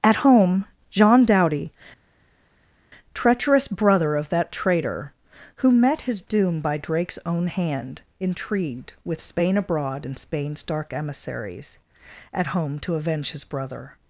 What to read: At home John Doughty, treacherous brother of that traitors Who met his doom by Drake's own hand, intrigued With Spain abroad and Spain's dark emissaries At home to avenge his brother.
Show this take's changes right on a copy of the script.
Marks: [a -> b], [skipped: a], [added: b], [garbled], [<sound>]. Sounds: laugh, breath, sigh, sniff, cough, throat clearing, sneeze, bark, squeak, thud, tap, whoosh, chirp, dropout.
At home John Doughty, treacherous brother of that [traitors -> traitor] Who met his doom by Drake's own hand, intrigued With Spain abroad and Spain's dark emissaries At home to avenge his brother.